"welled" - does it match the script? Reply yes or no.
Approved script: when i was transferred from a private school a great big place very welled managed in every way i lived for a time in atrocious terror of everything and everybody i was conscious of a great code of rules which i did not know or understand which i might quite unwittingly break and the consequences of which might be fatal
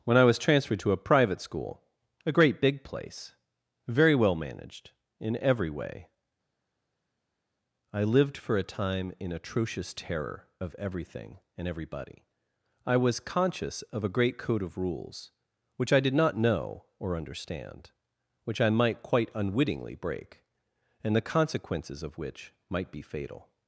no